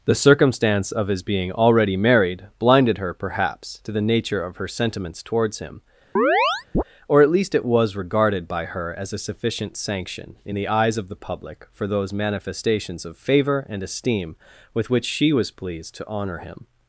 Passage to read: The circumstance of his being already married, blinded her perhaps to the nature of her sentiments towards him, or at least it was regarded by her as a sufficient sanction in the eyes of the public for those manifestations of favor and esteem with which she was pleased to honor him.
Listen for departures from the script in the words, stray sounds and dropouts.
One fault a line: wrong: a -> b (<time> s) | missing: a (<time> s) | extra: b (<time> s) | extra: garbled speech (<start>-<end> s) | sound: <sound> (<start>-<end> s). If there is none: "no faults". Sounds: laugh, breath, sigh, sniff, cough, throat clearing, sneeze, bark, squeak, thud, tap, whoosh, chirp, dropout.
sound: chirp (6.2-6.8 s)